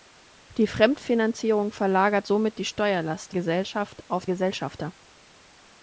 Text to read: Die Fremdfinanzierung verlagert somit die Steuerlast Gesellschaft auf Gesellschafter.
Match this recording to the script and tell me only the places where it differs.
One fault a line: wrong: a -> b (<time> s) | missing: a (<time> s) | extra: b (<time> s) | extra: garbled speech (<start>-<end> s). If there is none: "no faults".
no faults